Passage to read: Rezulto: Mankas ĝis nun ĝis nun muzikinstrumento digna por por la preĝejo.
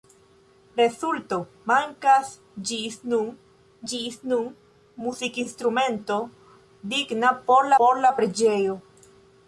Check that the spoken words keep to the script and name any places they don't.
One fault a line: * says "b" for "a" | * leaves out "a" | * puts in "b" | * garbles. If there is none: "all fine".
all fine